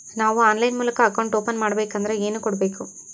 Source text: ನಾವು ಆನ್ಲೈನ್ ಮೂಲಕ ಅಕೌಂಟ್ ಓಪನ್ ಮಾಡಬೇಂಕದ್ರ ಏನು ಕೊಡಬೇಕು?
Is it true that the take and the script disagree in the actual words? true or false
false